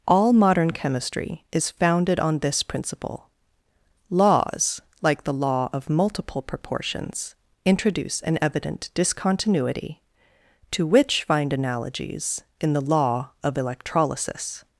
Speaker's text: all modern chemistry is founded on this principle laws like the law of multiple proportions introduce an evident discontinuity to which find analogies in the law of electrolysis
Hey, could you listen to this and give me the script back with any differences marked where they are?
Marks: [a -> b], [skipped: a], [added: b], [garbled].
all modern chemistry is founded on this principle laws like the law of multiple proportions introduce an evident discontinuity to which find analogies in the law of electrolysis